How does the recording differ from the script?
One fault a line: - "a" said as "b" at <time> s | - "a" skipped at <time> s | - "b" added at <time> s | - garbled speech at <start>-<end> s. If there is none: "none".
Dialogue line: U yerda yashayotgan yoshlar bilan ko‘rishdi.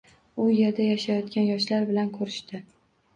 none